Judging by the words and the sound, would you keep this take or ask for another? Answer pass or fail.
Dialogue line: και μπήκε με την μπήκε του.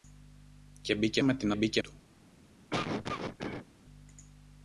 fail